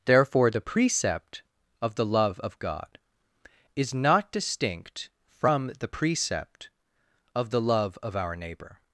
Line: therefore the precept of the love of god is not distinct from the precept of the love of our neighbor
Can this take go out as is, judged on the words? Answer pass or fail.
pass